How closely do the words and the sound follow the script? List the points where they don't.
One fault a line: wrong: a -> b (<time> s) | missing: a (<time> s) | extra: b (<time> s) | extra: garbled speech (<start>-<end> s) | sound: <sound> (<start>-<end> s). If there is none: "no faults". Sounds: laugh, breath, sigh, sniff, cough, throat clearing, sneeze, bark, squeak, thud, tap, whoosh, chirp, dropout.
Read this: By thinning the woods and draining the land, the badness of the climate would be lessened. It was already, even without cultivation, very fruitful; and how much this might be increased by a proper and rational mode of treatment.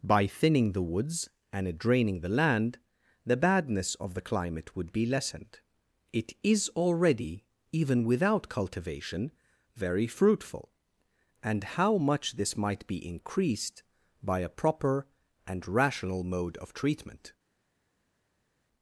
wrong: was -> is (6.4 s)